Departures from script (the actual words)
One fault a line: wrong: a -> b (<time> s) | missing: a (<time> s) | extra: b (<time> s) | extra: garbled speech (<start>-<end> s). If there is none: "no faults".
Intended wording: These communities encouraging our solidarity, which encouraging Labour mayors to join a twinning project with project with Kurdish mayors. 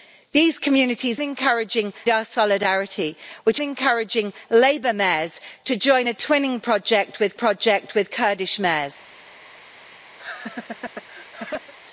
no faults